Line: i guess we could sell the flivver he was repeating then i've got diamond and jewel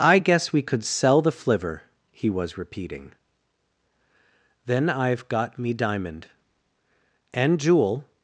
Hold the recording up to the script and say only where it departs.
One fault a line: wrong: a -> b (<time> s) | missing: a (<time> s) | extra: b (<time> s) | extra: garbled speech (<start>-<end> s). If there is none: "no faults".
extra: me (5.6 s)